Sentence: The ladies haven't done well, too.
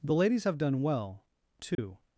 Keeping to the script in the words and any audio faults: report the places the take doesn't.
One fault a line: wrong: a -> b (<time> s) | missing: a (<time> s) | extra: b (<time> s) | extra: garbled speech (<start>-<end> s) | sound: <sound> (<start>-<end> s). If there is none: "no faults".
wrong: haven't -> have (0.4 s)
sound: dropout (1.7-1.8 s)